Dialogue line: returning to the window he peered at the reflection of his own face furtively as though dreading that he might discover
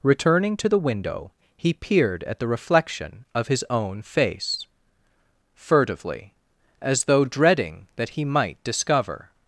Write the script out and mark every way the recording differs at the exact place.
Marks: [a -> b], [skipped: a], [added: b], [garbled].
returning to the window he peered at the reflection of his own face furtively as though dreading that he might discover